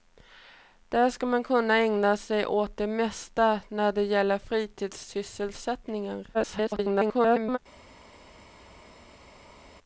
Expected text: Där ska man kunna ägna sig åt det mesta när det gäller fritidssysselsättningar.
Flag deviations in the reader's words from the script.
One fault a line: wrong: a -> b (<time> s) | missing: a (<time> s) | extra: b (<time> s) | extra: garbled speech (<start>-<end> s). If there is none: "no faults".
extra: garbled speech (6.3-7.6 s)